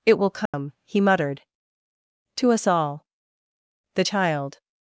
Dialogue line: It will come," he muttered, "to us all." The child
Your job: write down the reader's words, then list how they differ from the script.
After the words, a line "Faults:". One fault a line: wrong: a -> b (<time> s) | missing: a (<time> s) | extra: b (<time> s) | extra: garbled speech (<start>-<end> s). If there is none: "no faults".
It will come," he muttered, "to us all." The child
Faults:
no faults